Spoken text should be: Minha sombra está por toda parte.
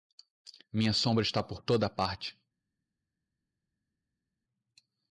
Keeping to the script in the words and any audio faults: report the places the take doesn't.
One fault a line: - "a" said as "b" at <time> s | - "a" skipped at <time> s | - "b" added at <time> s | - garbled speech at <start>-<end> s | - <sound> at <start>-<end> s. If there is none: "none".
none